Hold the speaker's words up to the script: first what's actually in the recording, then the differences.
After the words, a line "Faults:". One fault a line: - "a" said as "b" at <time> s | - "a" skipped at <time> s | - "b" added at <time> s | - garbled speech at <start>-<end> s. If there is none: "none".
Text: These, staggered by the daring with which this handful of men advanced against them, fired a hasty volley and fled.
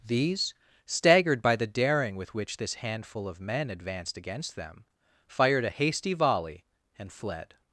These, staggered by the daring with which this handful of men advanced against them, fired a hasty volley and fled.
Faults:
none